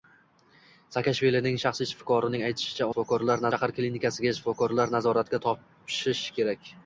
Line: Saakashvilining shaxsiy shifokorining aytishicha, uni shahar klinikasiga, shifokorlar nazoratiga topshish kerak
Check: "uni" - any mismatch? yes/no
yes